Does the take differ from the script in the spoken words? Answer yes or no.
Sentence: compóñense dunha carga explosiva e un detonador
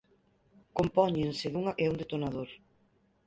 yes